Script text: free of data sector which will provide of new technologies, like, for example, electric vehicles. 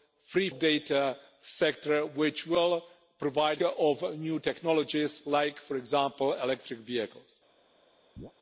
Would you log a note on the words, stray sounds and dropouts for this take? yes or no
yes